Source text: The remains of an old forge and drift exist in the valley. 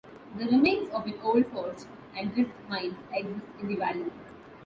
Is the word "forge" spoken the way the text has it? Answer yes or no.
yes